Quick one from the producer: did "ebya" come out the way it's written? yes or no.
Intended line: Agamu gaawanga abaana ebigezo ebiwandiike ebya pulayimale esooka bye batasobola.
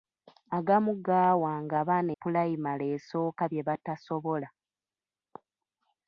no